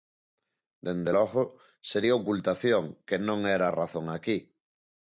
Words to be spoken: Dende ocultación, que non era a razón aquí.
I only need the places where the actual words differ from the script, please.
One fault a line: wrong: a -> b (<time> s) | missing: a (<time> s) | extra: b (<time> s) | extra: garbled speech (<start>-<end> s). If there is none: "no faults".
extra: logo sería (1.2 s)